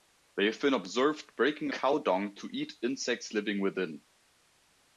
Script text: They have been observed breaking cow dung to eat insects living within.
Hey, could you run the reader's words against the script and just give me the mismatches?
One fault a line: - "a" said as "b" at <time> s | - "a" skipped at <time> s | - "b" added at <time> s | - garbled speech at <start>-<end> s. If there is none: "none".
none